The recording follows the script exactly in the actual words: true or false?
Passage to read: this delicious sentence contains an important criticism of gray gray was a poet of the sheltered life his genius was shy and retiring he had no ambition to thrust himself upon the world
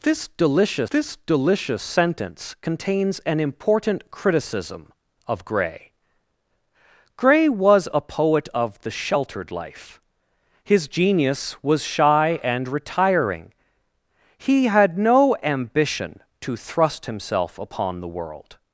false